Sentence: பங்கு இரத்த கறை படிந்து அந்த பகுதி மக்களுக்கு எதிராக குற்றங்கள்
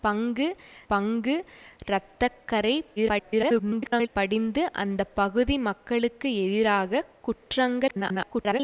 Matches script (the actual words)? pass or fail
fail